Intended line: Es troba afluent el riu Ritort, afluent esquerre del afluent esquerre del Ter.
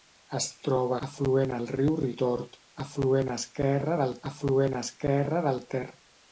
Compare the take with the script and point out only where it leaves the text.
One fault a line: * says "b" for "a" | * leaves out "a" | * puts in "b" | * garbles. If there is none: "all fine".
all fine